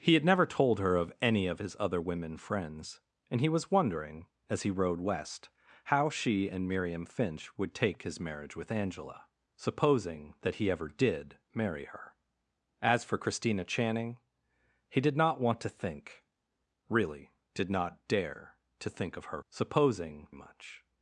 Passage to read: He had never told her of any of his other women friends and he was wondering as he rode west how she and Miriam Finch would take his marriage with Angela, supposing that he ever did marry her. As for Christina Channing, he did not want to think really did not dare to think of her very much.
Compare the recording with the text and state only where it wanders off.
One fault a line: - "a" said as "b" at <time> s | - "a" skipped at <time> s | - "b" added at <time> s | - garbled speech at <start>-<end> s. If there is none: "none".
- "very" said as "supposing" at 19.5 s